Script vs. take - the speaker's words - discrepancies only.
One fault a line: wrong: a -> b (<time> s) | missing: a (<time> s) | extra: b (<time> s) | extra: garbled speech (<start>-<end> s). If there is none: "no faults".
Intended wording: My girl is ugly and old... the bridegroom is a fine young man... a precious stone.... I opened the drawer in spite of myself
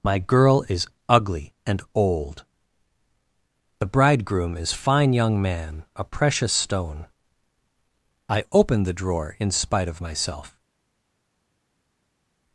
missing: a (4.7 s)